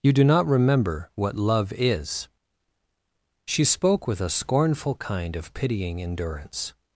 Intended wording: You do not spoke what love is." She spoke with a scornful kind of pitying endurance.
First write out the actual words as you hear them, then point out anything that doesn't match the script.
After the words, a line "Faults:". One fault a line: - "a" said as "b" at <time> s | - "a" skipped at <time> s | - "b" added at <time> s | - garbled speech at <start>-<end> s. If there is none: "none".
You do not remember what love is." She spoke with a scornful kind of pitying endurance.
Faults:
- "spoke" said as "remember" at 0.5 s